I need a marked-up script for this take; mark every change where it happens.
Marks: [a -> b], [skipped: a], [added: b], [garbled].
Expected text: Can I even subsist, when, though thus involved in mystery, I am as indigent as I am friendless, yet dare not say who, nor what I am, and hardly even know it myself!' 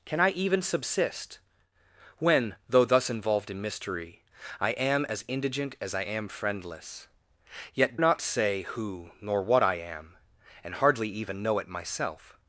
Can I even subsist, when, though thus involved in mystery, I am as indigent as I am friendless, yet [skipped: dare] not say who, nor what I am, and hardly even know it myself!'